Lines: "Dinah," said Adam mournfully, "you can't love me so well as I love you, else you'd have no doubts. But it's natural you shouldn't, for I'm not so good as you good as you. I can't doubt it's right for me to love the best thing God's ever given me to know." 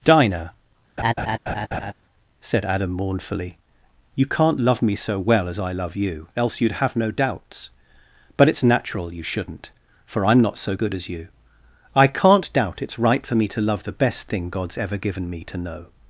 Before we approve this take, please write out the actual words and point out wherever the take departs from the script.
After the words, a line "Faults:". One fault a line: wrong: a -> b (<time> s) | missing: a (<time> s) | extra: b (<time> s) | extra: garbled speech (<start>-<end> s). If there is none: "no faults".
"Dinah," said Adam mournfully, "you can't love me so well as I love you, else you'd have no doubts. But it's natural you shouldn't, for I'm not so good as you. I can't doubt it's right for me to love the best thing God's ever given me to know."
Faults:
missing: good as you (11.3 s)